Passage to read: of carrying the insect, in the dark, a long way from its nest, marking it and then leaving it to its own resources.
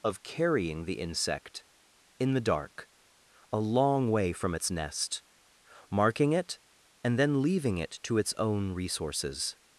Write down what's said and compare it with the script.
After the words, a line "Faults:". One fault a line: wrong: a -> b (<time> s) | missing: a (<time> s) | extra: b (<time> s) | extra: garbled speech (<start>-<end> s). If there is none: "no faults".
of carrying the insect, in the dark, a long way from its nest, marking it and then leaving it to its own resources.
Faults:
no faults